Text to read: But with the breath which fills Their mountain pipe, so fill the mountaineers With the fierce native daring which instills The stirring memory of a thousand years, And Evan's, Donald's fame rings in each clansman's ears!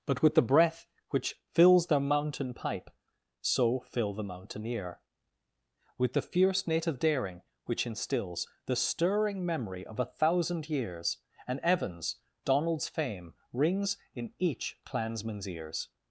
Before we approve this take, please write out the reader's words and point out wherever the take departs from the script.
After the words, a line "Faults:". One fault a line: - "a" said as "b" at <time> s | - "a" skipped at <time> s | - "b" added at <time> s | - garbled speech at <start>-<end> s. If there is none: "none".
But with the breath which fills Their mountain pipe, so fill the mountaineer With the fierce native daring which instills The stirring memory of a thousand years, And Evan's, Donald's fame rings in each clansman's ears!
Faults:
- "mountaineers" said as "mountaineer" at 4.2 s